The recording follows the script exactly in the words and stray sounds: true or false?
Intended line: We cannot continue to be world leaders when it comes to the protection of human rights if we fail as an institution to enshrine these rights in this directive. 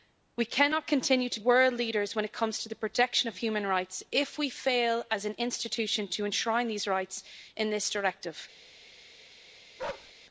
false